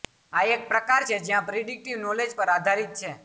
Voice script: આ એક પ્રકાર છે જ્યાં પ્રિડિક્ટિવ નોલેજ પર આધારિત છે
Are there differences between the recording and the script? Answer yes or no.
no